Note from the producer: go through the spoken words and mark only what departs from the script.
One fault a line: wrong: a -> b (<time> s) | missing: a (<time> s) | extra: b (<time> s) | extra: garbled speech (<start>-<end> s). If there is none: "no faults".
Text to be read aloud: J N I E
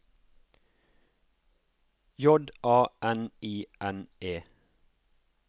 extra: A (2.6 s)
extra: N (3.8 s)